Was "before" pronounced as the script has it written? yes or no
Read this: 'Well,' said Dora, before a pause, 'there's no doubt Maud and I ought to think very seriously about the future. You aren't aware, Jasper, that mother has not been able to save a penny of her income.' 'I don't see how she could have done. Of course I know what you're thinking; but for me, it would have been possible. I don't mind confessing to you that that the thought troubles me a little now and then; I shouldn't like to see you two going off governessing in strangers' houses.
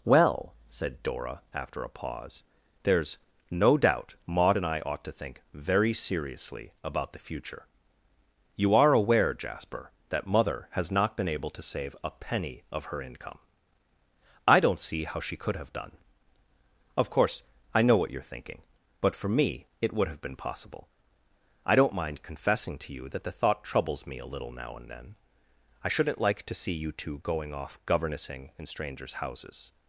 no